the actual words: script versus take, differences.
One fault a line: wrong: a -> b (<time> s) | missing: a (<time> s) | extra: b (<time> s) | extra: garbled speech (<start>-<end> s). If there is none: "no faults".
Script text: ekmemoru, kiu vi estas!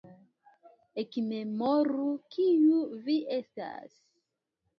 no faults